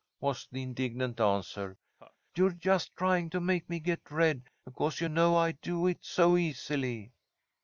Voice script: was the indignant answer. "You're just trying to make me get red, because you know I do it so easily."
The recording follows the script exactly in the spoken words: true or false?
true